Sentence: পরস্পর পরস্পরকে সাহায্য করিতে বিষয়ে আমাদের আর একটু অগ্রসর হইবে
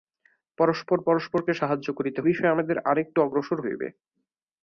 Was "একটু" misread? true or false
false